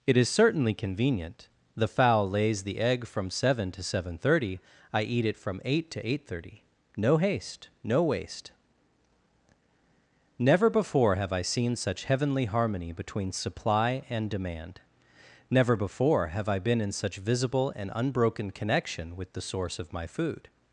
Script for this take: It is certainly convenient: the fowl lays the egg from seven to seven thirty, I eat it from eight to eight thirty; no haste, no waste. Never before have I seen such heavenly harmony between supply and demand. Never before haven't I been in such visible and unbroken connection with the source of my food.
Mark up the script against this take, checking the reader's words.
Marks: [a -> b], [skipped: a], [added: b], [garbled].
It is certainly convenient: the fowl lays the egg from seven to seven thirty, I eat it from eight to eight thirty; no haste, no waste. Never before have I seen such heavenly harmony between supply and demand. Never before [haven't -> have] I been in such visible and unbroken connection with the source of my food.